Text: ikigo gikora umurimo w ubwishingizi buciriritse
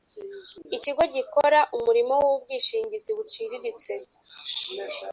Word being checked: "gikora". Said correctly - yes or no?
yes